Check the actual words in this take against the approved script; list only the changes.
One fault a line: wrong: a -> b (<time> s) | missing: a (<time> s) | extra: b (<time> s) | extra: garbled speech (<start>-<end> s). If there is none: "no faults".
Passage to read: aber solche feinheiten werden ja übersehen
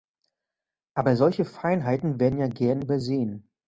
extra: gern (2.5 s)